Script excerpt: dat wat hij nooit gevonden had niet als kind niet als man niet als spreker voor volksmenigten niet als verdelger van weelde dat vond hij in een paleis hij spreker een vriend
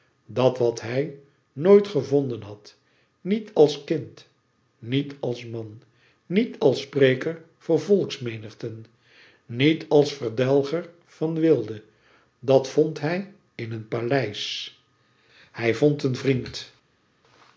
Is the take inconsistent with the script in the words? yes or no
yes